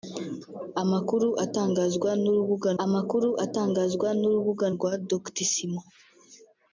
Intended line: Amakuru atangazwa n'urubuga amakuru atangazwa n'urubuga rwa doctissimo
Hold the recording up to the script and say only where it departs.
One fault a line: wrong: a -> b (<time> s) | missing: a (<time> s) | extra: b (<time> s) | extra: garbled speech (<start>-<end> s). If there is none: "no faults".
no faults